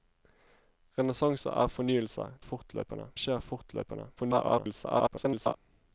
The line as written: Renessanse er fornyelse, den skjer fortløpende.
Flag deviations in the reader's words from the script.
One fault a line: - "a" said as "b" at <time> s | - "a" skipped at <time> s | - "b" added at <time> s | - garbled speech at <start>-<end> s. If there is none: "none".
- "den" said as "fortløpende" at 2.4 s
- garbled speech at 4.2-5.6 s